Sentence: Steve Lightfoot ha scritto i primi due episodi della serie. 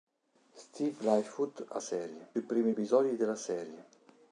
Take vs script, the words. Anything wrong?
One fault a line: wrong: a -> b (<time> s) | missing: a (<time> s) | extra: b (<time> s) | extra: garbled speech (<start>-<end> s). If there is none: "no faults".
wrong: scritto -> serie (1.8 s)
missing: due (2.7 s)